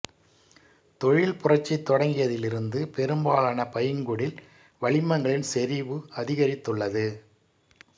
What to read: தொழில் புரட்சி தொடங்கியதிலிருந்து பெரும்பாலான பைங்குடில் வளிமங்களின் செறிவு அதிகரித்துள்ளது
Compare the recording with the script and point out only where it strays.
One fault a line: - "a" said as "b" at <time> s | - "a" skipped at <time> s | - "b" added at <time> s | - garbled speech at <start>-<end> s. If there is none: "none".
none